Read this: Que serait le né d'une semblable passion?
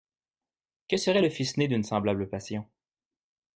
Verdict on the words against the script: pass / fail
fail